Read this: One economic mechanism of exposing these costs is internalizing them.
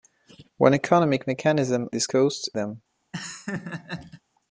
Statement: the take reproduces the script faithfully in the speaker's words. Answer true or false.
false